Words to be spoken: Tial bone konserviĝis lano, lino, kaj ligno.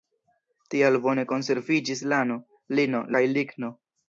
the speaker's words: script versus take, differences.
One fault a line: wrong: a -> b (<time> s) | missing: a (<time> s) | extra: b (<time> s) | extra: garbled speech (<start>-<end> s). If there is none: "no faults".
no faults